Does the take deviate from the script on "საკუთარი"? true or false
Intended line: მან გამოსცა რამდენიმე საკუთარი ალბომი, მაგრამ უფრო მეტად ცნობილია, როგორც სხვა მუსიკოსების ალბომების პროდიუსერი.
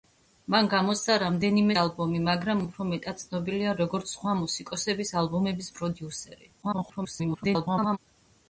true